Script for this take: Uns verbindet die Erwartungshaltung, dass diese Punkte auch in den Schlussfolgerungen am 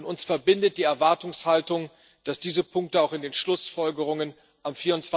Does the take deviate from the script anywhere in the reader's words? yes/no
no